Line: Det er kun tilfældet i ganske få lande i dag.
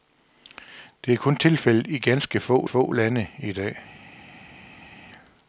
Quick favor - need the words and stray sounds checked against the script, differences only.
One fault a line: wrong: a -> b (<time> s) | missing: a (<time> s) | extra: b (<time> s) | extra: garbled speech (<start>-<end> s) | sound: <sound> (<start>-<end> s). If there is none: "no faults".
extra: få (2.6 s)